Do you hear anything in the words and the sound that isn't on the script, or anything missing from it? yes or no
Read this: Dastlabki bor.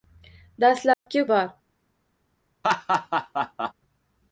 yes